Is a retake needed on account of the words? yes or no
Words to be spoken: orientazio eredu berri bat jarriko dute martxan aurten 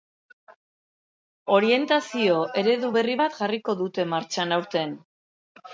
no